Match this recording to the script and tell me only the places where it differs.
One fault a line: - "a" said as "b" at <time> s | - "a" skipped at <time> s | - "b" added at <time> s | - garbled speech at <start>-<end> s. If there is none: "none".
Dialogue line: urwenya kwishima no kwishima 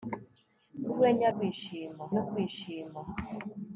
none